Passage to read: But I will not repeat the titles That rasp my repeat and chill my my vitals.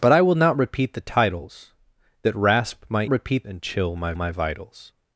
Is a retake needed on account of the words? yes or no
no